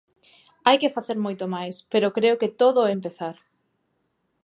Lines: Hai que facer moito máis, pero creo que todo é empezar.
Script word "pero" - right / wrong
right